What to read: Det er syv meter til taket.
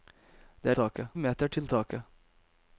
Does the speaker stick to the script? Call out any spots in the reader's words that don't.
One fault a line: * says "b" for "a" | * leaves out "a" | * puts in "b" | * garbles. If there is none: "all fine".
* says "taket" for "syv"